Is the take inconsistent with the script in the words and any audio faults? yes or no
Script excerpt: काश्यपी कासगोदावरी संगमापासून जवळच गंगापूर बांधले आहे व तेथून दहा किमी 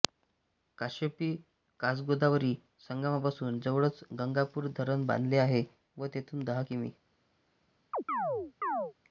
yes